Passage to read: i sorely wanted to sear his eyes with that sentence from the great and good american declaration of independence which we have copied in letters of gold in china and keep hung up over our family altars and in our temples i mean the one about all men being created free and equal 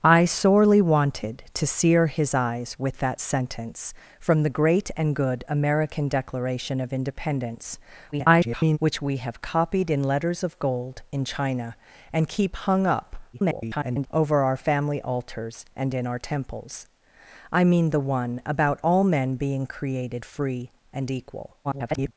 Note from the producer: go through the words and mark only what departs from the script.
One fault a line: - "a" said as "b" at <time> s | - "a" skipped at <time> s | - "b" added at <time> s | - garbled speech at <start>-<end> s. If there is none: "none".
- garbled speech at 8.1-8.8 s
- garbled speech at 13.3-14.1 s
- garbled speech at 21.6-22.1 s